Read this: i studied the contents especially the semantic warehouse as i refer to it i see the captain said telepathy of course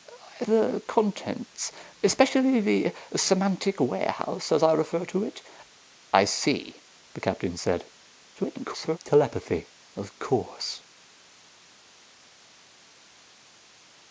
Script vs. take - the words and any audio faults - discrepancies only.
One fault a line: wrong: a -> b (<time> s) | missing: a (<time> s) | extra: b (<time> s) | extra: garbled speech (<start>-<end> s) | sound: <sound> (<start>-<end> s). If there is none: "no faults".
missing: studied (0.5 s)
extra: garbled speech (8.4-9.0 s)